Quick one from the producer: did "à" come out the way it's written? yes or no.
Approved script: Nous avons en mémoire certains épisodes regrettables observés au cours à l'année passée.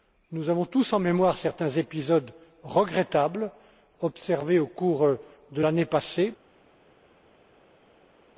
no